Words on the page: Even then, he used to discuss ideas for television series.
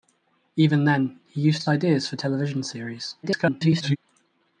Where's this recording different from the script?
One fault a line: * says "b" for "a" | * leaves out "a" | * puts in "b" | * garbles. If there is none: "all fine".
* leaves out "discuss"
* garbles